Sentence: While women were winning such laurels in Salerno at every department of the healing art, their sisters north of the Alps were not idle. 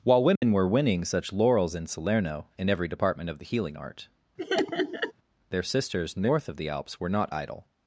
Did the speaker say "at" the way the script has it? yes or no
no